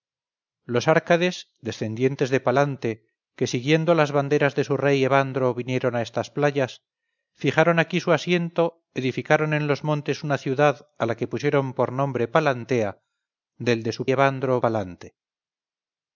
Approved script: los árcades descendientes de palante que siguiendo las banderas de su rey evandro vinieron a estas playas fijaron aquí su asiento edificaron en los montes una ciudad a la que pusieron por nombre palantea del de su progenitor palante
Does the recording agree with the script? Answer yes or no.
no